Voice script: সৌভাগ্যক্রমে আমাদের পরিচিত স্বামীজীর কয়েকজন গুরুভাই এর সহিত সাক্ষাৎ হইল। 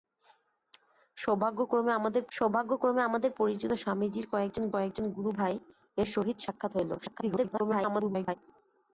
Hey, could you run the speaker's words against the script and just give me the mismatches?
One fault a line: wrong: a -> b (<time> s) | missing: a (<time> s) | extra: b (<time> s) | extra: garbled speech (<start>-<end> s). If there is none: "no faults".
extra: সৌভাগ্যক্রমে আমাদের (2.3 s)
extra: কয়েকজন (4.7 s)
extra: garbled speech (7.0-8.4 s)